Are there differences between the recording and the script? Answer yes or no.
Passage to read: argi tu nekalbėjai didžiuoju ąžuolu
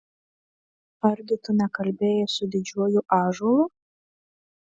yes